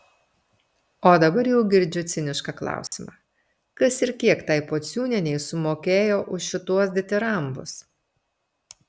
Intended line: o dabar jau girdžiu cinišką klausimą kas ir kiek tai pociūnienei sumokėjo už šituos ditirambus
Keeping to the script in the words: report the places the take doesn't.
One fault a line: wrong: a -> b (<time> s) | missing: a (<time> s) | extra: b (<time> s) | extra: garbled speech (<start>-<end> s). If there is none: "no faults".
no faults